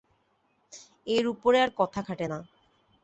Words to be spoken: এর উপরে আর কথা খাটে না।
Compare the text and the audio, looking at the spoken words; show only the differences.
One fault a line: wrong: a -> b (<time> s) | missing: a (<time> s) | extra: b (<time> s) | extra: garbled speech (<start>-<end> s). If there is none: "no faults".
no faults